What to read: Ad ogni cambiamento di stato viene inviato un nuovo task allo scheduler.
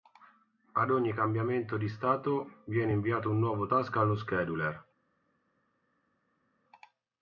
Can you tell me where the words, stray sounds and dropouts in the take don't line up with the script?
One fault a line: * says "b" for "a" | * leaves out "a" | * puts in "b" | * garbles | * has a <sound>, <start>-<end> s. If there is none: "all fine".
all fine